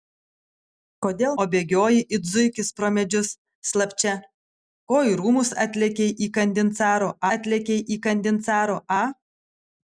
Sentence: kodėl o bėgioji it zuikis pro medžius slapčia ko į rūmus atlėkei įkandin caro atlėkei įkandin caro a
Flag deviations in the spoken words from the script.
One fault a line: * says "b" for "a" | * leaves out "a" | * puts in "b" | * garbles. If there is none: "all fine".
all fine